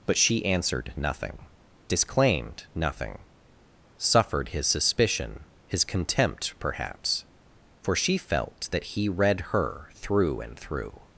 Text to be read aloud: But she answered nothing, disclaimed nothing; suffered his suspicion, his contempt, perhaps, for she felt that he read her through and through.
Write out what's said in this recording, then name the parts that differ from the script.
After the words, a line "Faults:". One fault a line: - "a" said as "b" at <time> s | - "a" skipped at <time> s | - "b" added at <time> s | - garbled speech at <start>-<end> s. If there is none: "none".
But she answered nothing, disclaimed nothing; suffered his suspicion, his contempt, perhaps, for she felt that he read her through and through.
Faults:
none